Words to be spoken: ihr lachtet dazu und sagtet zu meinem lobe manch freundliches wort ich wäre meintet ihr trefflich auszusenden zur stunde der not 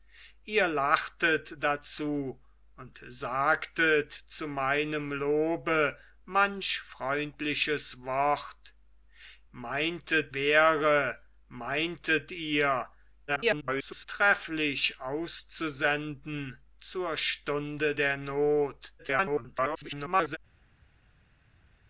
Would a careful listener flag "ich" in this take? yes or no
yes